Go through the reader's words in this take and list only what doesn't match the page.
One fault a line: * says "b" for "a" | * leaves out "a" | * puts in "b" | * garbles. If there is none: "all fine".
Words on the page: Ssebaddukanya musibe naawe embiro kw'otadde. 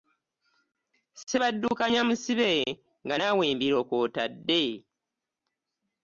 * puts in "nga"